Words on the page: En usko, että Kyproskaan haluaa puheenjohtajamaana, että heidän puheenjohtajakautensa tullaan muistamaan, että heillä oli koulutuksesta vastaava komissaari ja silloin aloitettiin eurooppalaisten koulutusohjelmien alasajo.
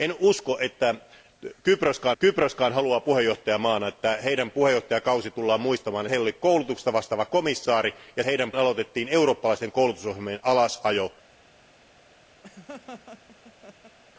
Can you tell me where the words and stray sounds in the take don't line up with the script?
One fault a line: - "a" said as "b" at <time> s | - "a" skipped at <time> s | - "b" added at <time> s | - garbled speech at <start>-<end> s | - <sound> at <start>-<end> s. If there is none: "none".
- "Kyproskaan" added at 2.2 s
- "että" skipped at 6.1 s
- "silloin" said as "heidän" at 8.2 s
- laugh at 12.4-14.0 s